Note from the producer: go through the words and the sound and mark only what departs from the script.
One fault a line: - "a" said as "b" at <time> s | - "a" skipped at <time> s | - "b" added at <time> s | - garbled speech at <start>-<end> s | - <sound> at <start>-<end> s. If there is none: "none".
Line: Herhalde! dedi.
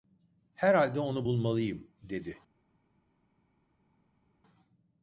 - "onu bulmalıyım" added at 1.0 s